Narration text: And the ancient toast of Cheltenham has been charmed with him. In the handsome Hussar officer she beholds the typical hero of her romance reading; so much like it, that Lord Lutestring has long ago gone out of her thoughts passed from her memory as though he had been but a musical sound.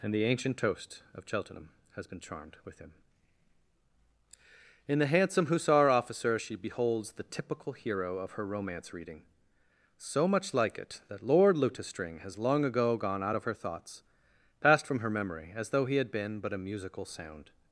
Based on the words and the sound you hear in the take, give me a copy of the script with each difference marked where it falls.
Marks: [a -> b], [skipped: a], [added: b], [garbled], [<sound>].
And the ancient toast of Cheltenham has been charmed with him. In the handsome Hussar officer she beholds the typical hero of her romance reading; so much like it, that Lord Lutestring has long ago gone out of her thoughts passed from her memory as though he had been but a musical sound.